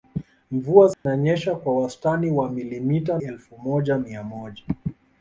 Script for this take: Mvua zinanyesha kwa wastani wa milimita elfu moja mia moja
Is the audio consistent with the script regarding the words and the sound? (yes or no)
no